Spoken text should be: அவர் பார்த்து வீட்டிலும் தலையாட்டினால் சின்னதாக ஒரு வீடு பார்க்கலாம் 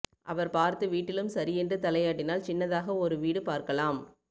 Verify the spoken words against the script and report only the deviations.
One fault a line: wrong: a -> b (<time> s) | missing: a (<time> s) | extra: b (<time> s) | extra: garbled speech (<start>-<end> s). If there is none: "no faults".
extra: சரியென்று (1.3 s)